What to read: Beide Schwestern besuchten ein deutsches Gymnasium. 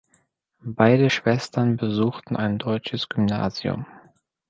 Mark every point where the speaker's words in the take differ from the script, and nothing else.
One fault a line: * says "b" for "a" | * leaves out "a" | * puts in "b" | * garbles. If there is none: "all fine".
all fine